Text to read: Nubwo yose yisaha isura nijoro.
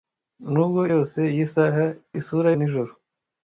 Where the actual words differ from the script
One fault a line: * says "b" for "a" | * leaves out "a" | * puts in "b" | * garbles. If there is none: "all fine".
all fine